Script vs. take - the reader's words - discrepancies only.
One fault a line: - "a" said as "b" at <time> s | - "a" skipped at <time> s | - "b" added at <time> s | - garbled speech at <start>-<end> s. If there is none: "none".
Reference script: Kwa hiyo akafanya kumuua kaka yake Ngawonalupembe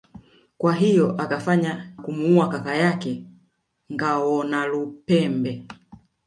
none